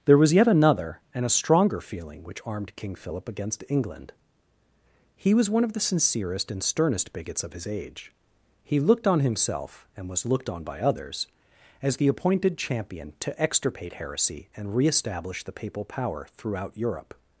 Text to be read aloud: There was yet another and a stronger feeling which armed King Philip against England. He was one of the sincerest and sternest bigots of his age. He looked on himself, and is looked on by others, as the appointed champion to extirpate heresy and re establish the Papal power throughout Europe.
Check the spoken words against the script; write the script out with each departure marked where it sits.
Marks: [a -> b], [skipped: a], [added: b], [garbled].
There was yet another and a stronger feeling which armed King Philip against England. He was one of the sincerest and sternest bigots of his age. He looked on himself, and [is -> was] looked on by others, as the appointed champion to extirpate heresy and re establish the Papal power throughout Europe.